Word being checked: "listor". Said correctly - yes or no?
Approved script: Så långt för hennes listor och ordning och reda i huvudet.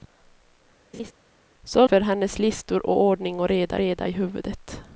yes